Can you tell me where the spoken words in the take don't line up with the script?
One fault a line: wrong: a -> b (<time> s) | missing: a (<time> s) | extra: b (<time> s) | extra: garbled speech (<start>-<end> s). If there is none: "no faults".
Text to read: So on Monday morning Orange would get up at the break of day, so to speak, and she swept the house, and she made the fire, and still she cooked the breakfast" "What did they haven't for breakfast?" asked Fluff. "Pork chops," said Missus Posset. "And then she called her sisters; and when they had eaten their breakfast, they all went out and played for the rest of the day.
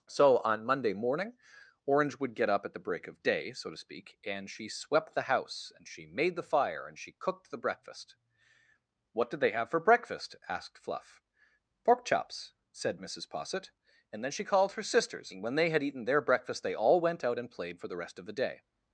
missing: still (7.0 s)
wrong: haven't -> have (9.5 s)